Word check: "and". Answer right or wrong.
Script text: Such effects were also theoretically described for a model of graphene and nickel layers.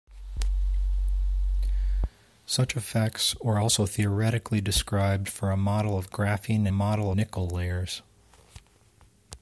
wrong